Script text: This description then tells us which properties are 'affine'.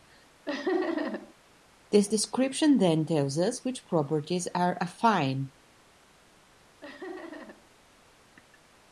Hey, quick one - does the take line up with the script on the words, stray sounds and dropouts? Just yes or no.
no